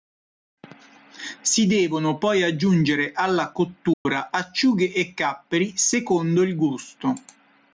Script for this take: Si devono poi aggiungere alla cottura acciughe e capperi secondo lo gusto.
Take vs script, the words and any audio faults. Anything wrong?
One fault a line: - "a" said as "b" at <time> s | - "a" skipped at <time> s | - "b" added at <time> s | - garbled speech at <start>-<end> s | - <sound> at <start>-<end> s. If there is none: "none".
- dropout at 3.9-4.1 s
- "lo" said as "il" at 6.4 s